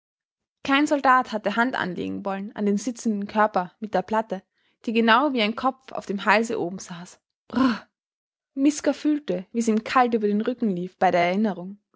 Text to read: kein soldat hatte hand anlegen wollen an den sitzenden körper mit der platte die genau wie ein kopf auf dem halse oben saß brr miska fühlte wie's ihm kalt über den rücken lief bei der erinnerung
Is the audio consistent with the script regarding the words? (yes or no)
yes